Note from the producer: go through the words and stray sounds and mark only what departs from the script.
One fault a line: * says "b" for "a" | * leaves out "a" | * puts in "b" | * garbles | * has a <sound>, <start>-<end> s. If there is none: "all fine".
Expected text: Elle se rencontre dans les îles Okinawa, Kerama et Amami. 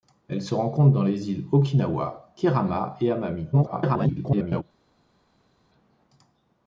* garbles